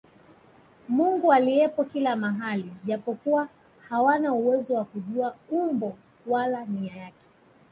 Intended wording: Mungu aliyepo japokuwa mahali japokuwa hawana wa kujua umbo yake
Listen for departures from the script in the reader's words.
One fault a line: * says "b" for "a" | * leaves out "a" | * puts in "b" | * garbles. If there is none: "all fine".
* says "kila" for "japokuwa"
* puts in "uwezo"
* puts in "wala nia"